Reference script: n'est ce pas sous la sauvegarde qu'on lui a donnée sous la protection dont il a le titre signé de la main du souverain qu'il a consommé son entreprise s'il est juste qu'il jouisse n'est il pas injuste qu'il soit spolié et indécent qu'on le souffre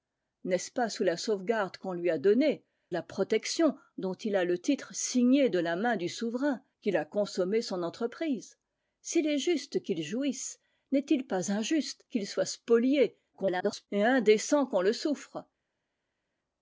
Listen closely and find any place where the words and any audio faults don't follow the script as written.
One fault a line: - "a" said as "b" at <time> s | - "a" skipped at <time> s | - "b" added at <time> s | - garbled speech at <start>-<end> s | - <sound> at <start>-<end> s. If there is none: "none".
- "sous" skipped at 2.6 s
- garbled speech at 13.3-13.9 s